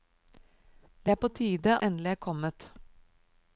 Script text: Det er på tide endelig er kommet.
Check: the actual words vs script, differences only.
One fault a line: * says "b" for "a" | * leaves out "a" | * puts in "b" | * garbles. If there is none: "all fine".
all fine